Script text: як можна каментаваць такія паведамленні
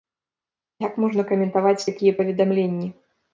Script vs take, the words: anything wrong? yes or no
no